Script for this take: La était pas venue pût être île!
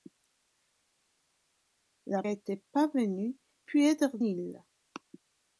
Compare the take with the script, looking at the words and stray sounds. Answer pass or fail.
pass